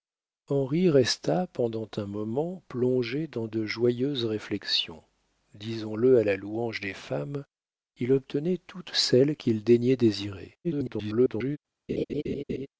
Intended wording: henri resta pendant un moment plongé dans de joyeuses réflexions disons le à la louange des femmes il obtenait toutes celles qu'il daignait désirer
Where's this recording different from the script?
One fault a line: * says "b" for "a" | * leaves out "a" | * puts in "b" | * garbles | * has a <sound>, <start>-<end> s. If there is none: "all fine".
* garbles
* has a laugh, 11.9-12.7 s